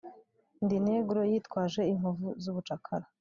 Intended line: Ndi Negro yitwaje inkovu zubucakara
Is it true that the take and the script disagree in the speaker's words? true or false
false